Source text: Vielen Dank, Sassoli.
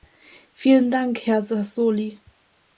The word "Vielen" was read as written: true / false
true